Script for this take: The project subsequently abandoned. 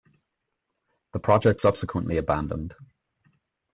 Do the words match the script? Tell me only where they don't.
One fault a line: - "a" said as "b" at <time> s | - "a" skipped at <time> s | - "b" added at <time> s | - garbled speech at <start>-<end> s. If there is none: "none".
none